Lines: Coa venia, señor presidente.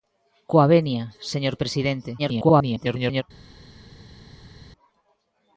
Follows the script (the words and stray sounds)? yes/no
no